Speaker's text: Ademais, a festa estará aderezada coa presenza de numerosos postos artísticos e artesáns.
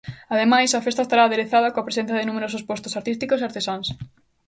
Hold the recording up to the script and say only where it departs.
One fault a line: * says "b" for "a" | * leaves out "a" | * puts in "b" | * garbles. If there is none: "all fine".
all fine